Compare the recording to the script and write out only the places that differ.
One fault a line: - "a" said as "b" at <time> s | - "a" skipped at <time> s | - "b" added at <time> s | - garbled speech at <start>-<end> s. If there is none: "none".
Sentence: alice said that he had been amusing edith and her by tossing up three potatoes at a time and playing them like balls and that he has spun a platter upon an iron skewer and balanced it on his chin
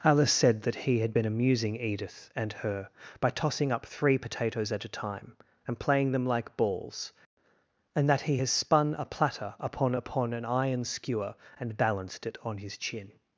- "upon" added at 9.9 s